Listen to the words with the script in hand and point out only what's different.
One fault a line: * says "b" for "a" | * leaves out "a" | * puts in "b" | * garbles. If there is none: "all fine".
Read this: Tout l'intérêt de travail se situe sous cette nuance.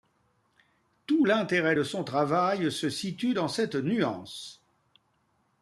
* puts in "son"
* says "dans" for "sous"